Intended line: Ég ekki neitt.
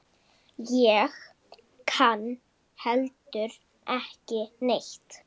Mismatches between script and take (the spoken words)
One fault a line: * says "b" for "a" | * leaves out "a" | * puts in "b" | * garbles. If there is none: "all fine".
* puts in "kann heldur"